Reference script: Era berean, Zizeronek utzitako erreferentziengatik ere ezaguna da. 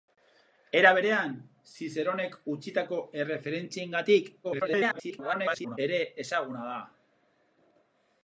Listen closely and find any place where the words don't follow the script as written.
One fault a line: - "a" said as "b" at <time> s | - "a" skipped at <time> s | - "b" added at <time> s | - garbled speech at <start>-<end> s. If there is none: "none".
- garbled speech at 4.4-5.8 s